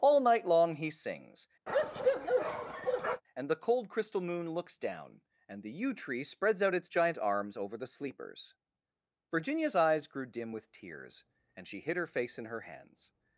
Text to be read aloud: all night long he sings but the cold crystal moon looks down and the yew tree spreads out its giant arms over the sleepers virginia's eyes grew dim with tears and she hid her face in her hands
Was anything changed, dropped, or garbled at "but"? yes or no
yes